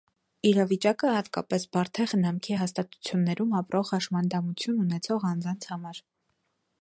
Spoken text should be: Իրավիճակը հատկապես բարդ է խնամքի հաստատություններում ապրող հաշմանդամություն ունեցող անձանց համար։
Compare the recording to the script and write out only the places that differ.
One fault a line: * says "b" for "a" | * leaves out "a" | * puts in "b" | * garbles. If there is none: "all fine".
all fine